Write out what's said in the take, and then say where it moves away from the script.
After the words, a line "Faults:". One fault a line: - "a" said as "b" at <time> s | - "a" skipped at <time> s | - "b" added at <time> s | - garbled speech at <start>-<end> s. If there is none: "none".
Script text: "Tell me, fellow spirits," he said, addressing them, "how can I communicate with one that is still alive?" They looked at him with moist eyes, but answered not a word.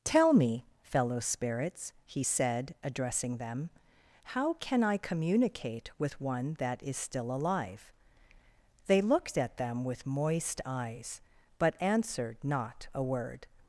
"Tell me, fellow spirits," he said, addressing them, "how can I communicate with one that is still alive?" They looked at them with moist eyes, but answered not a word.
Faults:
- "him" said as "them" at 9.6 s